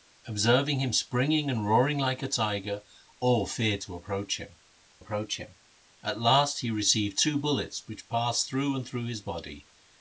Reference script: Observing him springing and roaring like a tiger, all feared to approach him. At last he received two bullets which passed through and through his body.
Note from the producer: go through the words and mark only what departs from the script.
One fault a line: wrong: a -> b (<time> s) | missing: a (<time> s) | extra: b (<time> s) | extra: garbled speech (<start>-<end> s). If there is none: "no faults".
extra: approach him (5.0 s)